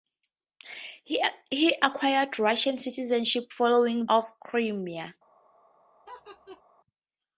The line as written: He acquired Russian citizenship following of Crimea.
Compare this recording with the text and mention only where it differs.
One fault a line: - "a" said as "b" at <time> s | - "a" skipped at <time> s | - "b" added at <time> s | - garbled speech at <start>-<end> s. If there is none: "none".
none